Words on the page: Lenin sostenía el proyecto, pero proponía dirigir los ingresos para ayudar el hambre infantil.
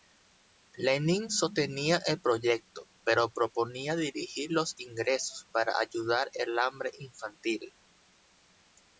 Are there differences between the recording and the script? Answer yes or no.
no